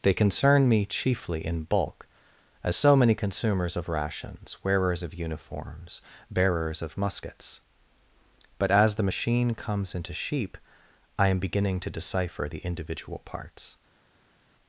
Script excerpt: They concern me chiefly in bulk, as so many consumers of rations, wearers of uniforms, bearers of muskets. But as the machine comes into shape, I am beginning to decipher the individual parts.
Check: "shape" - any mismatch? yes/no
yes